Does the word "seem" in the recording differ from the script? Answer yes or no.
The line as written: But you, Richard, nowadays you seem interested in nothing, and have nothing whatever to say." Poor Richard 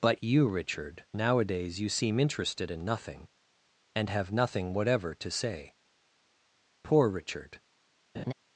no